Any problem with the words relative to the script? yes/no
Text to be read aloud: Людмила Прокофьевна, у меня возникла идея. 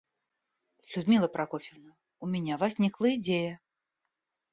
no